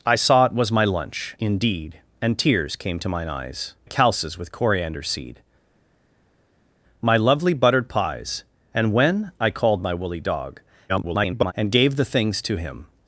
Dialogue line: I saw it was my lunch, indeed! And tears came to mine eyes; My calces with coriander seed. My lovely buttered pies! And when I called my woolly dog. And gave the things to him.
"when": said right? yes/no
yes